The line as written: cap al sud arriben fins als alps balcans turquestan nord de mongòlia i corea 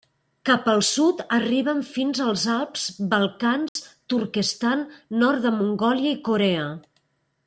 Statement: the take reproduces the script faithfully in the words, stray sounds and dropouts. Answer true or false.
false